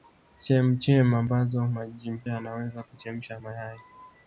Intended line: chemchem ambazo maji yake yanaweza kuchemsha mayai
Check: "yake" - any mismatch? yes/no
yes